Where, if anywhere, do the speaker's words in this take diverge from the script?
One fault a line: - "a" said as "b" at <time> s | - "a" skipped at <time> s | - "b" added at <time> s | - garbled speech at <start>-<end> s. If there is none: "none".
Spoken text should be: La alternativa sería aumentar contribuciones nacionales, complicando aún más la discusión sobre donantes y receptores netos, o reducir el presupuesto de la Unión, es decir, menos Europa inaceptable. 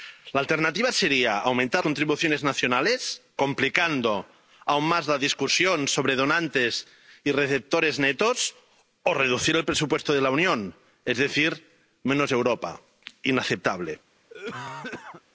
none